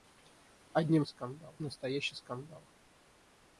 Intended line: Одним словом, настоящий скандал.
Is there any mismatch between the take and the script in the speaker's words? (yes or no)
yes